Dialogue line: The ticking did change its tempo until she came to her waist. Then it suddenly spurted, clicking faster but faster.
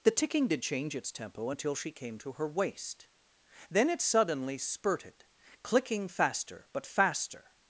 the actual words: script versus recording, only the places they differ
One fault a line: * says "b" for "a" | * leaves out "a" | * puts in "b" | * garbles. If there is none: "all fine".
all fine